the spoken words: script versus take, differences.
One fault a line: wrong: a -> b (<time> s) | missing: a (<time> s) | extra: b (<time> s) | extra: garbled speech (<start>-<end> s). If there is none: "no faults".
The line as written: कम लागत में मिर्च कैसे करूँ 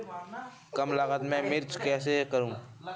no faults